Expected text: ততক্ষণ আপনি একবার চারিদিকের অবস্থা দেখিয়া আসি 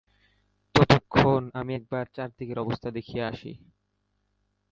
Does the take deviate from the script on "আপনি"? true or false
true